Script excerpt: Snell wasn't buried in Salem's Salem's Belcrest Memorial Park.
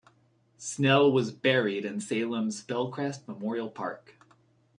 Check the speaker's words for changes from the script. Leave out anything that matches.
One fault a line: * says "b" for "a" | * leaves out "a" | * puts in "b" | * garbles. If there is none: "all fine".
* says "was" for "wasn't"
* leaves out "Salem's"